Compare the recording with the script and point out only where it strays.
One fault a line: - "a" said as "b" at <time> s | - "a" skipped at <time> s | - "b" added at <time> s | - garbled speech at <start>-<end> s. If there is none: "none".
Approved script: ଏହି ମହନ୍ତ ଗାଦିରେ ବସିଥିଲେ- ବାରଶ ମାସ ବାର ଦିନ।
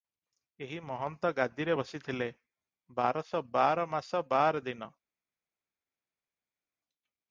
- "ବାର" added at 3.5 s